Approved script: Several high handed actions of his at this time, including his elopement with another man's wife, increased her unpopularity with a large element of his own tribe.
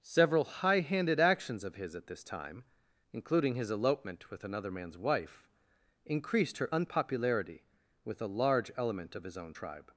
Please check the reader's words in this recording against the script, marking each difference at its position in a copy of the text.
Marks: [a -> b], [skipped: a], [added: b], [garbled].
Several high handed actions of his at this time, including his elopement with another man's wife, increased her unpopularity with a large element of his own tribe.